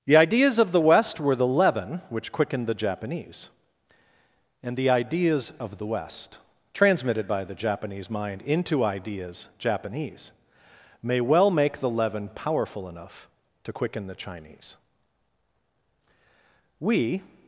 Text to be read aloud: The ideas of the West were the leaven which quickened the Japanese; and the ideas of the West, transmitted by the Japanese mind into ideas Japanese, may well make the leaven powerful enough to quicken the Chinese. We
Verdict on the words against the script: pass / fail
pass